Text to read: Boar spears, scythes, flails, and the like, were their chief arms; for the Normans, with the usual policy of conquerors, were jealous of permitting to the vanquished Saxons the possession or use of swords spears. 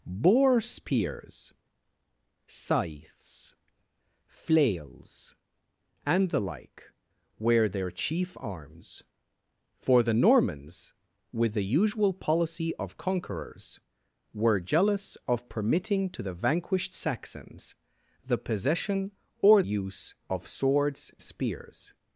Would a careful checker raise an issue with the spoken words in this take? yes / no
no